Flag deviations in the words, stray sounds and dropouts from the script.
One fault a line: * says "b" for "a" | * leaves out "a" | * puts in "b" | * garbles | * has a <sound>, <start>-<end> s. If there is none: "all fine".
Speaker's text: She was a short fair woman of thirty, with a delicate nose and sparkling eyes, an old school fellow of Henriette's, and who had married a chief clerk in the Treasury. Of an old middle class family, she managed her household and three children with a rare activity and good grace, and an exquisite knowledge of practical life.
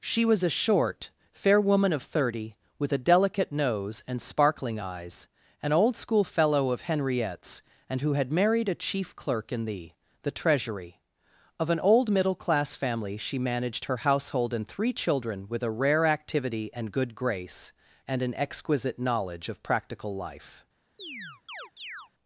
* puts in "the"
* has a chirp, 21.0-22.1 s